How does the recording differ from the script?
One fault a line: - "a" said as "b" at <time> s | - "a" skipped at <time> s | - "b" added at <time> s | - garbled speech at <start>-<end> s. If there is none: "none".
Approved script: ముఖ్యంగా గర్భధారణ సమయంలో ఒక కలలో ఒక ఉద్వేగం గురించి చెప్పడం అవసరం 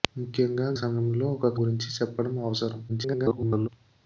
- "గర్భధారణ" skipped at 0.7 s
- "కలలో ఒక ఉద్వేగం" skipped at 1.5 s
- garbled speech at 2.9-3.7 s